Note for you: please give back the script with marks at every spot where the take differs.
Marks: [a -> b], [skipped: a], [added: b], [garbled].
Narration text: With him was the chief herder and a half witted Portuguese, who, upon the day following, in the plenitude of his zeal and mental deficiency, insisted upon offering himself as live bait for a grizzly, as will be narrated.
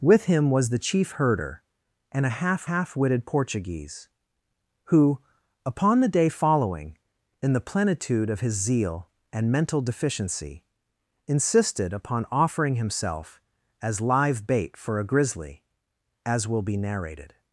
With him was the chief herder and a half [added: half] witted Portuguese, who, upon the day following, in the plenitude of his zeal and mental deficiency, insisted upon offering himself as live bait for a grizzly, as will be narrated.